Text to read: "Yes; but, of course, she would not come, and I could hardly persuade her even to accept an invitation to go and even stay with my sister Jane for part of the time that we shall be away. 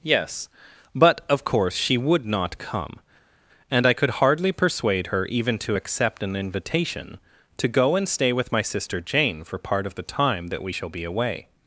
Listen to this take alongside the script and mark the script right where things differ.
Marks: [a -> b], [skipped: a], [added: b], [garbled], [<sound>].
"Yes; but, of course, she would not come, and I could hardly persuade her even to accept an invitation to go and [skipped: even] stay with my sister Jane for part of the time that we shall be away.